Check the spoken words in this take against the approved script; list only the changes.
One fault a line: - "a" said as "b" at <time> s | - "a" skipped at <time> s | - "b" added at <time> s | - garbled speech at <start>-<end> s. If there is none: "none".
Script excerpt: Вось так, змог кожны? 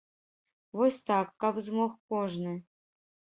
- "каб" added at 1.4 s